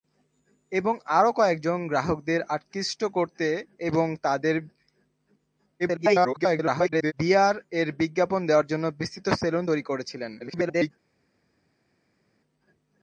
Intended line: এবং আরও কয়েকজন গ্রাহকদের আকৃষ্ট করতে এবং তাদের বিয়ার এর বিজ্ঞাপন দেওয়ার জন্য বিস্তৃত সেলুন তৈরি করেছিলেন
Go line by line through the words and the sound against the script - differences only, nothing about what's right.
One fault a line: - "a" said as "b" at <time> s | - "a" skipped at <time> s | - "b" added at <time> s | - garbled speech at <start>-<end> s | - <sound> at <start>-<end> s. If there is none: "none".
- garbled speech at 5.8-7.1 s
- garbled speech at 10.4-10.9 s